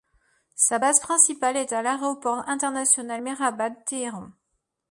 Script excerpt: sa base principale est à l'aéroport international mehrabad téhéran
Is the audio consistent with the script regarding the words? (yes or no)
yes